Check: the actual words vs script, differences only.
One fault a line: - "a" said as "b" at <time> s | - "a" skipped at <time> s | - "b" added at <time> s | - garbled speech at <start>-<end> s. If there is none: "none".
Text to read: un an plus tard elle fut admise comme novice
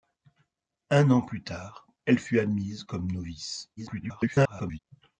- garbled speech at 3.8-4.8 s